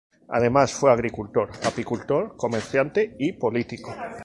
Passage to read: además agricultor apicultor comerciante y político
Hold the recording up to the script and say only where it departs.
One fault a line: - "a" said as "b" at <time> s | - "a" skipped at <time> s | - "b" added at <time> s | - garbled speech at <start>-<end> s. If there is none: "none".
- "fue" added at 0.7 s